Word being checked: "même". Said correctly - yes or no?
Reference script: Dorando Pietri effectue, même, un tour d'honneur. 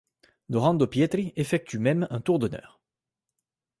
yes